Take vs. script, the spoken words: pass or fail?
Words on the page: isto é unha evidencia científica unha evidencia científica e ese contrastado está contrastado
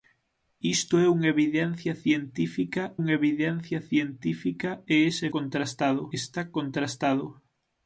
pass